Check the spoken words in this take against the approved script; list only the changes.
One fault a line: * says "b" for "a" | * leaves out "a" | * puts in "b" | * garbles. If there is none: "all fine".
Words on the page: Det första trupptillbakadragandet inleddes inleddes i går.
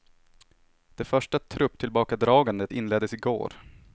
* leaves out "inleddes"